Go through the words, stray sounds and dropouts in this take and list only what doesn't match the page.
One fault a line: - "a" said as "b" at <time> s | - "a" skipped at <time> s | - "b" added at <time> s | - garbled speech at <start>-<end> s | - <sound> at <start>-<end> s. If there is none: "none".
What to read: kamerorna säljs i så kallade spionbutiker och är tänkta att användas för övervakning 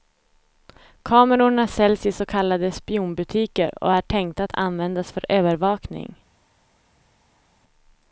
none